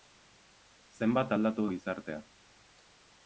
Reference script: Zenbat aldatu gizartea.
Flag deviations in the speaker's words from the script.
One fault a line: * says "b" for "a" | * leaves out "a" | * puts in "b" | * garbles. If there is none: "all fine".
all fine